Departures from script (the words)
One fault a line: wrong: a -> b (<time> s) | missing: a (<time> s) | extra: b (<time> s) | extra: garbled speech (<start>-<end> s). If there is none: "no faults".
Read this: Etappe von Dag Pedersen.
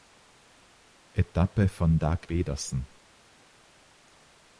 no faults